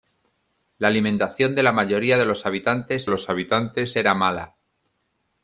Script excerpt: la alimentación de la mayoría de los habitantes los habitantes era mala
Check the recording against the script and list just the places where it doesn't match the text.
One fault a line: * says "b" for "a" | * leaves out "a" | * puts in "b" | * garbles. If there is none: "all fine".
all fine